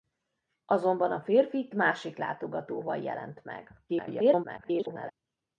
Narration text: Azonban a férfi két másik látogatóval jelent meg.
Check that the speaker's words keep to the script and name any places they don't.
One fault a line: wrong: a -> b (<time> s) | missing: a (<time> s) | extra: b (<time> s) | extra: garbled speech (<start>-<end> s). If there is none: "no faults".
missing: két (1.7 s)
extra: garbled speech (3.9-5.1 s)